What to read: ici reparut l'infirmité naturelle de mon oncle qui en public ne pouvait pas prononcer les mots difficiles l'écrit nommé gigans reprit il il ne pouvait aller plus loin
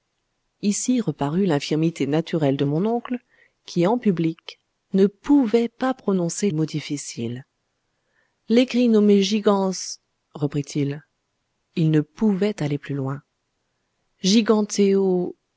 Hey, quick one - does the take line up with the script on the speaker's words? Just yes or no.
no